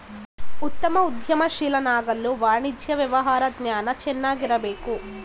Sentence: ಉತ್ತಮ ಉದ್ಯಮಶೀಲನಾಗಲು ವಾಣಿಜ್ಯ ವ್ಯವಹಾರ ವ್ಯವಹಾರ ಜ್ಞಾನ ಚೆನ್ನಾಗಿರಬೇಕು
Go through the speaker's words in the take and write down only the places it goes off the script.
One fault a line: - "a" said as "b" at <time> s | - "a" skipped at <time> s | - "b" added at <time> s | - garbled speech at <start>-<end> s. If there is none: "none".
- "ವ್ಯವಹಾರ" skipped at 3.4 s